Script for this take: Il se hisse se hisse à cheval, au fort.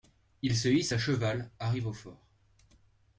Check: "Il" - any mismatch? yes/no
no